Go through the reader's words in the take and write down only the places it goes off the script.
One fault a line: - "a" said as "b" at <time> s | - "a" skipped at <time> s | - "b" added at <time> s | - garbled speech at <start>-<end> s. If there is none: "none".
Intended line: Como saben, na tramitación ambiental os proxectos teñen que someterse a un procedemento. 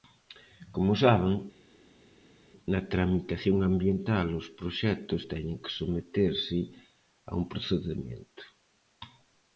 none